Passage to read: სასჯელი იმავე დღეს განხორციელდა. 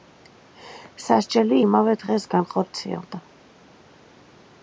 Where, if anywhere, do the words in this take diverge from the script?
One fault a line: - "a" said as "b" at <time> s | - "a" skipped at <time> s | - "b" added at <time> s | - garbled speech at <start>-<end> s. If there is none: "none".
none